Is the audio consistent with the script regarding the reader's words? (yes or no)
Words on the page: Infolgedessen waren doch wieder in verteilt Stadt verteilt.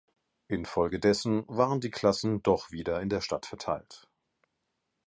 no